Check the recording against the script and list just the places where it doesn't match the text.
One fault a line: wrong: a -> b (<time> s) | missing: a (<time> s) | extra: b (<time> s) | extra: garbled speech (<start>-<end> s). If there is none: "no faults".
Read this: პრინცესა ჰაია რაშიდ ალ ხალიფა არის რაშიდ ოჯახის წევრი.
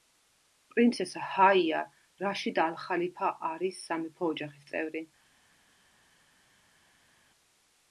wrong: რაშიდ -> სამეფო (3.9 s)